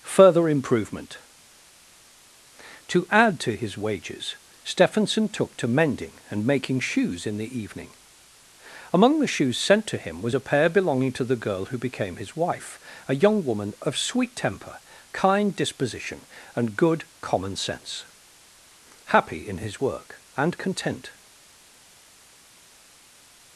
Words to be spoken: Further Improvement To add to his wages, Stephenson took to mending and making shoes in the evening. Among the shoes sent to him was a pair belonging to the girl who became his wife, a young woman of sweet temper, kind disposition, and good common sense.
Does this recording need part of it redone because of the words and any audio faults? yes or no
yes